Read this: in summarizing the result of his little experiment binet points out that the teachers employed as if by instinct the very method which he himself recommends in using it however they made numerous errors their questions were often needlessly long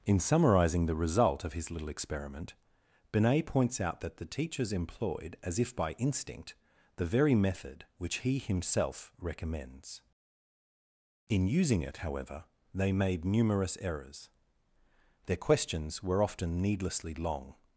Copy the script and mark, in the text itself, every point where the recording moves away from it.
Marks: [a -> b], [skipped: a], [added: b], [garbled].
in summarizing the result of his little experiment binet points out that the teachers employed as if by instinct the very method which he himself recommends in using it however they made numerous errors their questions were often needlessly long